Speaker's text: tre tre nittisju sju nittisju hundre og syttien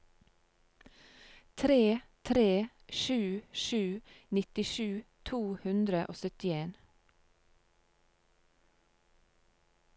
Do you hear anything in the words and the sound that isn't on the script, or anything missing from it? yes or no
yes